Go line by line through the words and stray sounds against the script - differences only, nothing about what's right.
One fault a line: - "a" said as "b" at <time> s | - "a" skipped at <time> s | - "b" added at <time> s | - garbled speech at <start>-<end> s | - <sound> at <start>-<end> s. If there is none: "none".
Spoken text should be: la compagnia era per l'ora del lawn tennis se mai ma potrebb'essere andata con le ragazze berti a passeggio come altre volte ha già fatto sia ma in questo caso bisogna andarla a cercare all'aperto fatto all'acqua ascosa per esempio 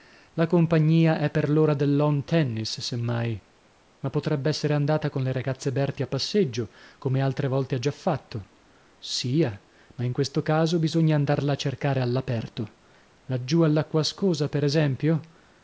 - "era" said as "è" at 1.2 s
- "fatto" said as "laggiù" at 13.2 s